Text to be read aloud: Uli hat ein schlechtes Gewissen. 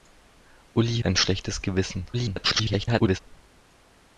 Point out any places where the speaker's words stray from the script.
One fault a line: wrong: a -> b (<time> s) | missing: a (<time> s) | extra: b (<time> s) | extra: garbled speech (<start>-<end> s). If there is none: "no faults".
missing: hat (1.0 s)
extra: garbled speech (2.1-3.2 s)